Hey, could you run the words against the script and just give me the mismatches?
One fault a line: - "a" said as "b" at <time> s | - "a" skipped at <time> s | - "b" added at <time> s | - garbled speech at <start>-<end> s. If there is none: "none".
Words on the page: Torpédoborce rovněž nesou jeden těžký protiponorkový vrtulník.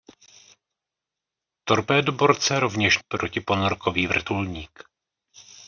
- "nesou jeden těžký" skipped at 3.0 s